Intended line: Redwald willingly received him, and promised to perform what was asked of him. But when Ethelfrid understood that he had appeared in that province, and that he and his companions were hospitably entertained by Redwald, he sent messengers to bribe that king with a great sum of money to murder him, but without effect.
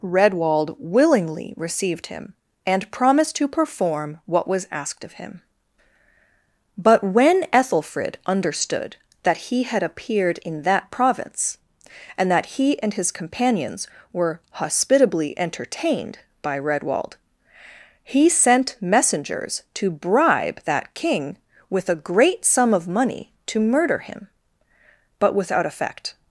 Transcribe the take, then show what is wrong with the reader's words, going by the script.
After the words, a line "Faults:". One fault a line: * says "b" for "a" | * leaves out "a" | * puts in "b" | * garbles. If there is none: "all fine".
Redwald willingly received him, and promised to perform what was asked of him. But when Ethelfrid understood that he had appeared in that province, and that he and his companions were hospitably entertained by Redwald, he sent messengers to bribe that king with a great sum of money to murder him, but without effect.
Faults:
all fine